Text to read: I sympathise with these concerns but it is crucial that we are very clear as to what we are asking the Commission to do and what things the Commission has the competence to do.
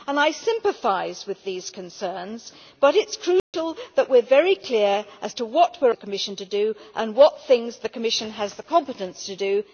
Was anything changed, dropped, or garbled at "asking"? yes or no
yes